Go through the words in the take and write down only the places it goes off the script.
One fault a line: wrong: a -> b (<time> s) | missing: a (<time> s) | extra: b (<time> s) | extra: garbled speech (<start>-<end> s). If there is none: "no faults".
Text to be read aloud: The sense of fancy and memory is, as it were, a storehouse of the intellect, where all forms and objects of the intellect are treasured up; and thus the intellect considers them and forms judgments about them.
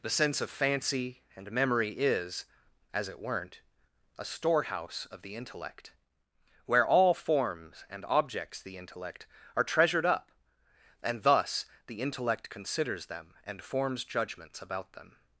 wrong: were -> weren't (3.2 s)
missing: of (8.6 s)